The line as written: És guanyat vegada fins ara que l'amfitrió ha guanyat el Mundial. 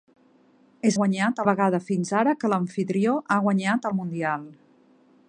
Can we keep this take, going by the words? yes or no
yes